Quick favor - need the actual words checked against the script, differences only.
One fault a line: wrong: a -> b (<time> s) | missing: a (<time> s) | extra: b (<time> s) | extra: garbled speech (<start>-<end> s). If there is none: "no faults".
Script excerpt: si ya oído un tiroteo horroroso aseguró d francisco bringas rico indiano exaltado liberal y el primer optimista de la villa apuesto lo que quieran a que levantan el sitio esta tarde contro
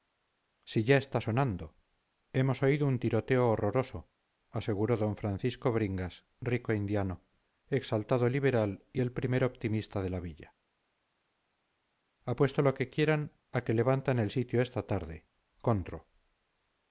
extra: está sonando hemos (1.0 s)